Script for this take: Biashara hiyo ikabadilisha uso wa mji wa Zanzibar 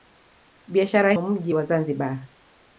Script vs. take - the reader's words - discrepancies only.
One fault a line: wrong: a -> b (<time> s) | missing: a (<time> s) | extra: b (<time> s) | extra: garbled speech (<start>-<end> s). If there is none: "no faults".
missing: hiyo ikabadilisha uso (1.1 s)